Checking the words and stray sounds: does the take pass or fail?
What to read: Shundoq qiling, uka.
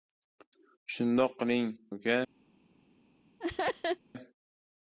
fail